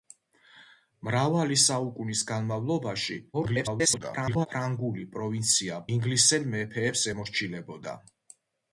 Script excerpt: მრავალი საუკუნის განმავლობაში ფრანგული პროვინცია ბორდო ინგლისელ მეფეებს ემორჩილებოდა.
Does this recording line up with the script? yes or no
no